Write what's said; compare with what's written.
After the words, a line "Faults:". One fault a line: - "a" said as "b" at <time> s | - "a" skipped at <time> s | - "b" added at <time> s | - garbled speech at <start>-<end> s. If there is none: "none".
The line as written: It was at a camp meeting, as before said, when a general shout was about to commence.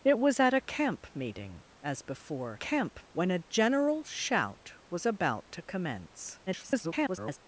It was at a camp meeting, as before camp, when a general shout was about to commence. [garbled]
Faults:
- "said" said as "camp" at 2.5 s
- garbled speech at 6.5-7.4 s